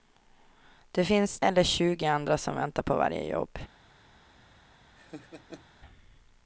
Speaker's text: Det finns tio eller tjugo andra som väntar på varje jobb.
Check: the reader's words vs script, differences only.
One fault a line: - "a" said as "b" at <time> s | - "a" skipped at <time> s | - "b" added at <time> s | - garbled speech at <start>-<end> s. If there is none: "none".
- "tio" skipped at 1.4 s